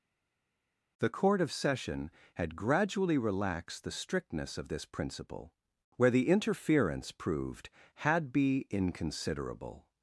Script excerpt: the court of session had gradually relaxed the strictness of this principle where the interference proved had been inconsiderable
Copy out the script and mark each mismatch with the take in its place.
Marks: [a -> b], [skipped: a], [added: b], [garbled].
the court of session had gradually relaxed the strictness of this principle where the interference proved had [been -> be] inconsiderable